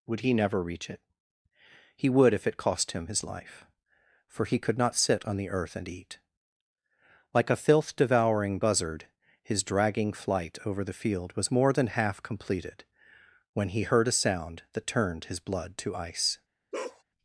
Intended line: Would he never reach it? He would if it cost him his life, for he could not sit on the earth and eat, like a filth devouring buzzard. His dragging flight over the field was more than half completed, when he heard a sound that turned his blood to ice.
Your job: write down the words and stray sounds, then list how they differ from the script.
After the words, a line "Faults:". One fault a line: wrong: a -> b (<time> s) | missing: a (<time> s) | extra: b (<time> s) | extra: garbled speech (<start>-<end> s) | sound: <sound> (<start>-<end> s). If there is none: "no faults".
Would he never reach it? He would if it cost him his life, for he could not sit on the earth and eat, like a filth devouring buzzard. His dragging flight over the field was more than half completed, when he heard a sound that turned his blood to ice.
Faults:
sound: bark (16.7-17.0 s)